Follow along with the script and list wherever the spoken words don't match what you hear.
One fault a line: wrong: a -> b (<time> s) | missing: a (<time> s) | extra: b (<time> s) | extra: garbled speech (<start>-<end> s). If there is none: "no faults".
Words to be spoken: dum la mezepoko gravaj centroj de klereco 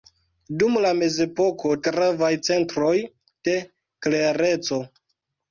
no faults